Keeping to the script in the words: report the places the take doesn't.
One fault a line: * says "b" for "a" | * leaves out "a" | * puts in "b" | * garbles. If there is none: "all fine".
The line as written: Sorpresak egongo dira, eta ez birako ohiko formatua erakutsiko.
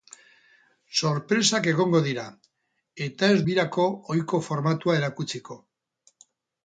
all fine